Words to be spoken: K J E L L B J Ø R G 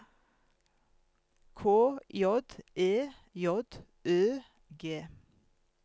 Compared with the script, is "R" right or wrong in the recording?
wrong